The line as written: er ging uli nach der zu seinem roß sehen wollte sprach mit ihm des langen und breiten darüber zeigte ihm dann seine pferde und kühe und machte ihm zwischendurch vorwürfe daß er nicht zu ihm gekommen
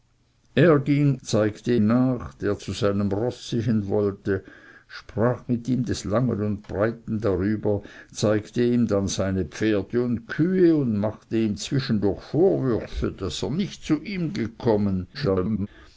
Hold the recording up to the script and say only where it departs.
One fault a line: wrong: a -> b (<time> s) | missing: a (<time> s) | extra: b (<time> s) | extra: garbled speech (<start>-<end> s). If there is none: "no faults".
wrong: uli -> zeigte (1.2 s)
extra: garbled speech (15.1-15.7 s)